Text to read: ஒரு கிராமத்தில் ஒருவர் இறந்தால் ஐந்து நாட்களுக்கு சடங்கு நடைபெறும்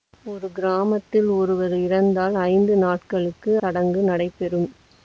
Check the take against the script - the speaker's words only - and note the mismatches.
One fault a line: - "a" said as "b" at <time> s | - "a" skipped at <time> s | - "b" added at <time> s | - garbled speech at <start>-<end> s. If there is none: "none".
none